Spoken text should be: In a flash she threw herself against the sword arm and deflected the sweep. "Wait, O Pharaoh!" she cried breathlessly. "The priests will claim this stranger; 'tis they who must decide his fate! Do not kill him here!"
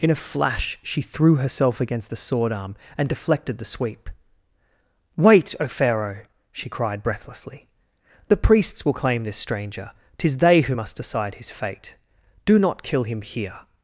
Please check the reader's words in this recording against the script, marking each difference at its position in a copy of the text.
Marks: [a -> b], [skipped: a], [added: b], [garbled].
In a flash she threw herself against the sword arm and deflected the sweep. "Wait, O Pharaoh!" she cried breathlessly. "The priests will claim this stranger; 'tis they who must decide his fate! Do not kill him here!"